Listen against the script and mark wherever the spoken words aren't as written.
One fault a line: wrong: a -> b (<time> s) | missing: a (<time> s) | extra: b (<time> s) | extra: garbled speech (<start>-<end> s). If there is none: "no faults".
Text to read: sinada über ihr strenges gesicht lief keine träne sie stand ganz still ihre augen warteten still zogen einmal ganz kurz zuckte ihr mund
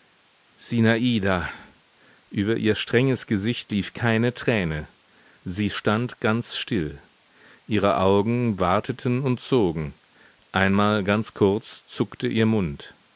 wrong: still -> und (9.2 s)